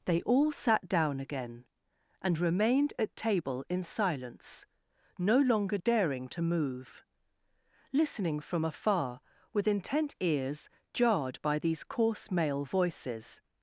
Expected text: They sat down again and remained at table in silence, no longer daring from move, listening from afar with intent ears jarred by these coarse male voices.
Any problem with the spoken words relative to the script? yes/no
yes